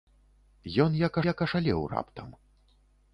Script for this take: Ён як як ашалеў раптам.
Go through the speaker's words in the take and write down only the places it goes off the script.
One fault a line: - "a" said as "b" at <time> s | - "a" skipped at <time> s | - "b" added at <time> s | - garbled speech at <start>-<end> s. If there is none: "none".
none